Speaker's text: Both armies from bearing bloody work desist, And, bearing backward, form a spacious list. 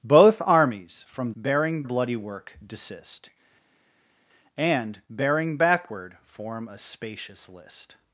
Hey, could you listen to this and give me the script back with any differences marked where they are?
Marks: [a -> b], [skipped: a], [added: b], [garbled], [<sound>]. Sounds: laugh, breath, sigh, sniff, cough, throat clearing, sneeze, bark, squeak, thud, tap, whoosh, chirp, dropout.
Both armies from bearing bloody work desist, And, bearing backward, form a spacious list.